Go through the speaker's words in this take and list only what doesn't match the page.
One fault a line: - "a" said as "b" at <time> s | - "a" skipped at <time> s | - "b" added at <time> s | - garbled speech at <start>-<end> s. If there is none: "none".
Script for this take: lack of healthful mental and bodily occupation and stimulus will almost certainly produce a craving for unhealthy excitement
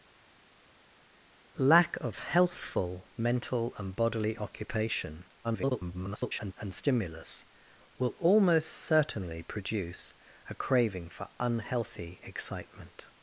- garbled speech at 5.4-6.5 s